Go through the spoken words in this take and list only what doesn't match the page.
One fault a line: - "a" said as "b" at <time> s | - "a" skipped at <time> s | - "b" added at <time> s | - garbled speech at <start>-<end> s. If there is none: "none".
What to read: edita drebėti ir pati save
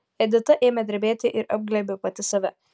- "ėmė" added at 0.7 s
- "apglėbė" added at 1.6 s